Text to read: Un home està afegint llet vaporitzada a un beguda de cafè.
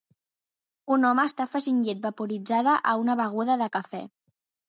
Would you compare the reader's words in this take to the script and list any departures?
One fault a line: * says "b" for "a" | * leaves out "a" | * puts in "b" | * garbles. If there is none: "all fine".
* says "una" for "un"